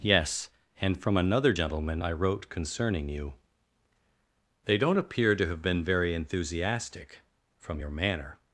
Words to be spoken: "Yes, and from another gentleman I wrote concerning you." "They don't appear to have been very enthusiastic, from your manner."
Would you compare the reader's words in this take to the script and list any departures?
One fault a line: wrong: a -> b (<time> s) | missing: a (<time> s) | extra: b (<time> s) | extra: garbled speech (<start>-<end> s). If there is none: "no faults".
no faults